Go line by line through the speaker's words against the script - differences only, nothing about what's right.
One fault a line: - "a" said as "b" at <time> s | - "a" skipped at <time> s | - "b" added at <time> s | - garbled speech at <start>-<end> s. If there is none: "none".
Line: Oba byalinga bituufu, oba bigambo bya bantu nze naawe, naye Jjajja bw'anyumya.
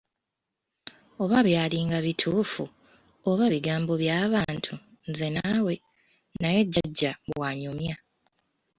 none